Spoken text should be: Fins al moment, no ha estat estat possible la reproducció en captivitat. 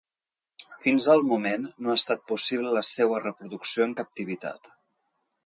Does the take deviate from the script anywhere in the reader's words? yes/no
yes